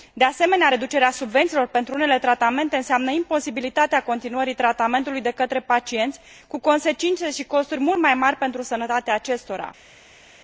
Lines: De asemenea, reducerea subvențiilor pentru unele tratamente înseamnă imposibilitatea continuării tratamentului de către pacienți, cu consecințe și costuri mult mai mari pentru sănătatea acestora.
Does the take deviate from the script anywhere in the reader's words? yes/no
no